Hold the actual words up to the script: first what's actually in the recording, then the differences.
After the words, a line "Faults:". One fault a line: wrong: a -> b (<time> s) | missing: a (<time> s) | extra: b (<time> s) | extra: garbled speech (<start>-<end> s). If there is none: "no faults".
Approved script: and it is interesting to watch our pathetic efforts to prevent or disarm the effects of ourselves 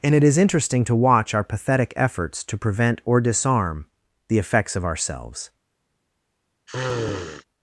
and it is interesting to watch our pathetic efforts to prevent or disarm the effects of ourselves
Faults:
no faults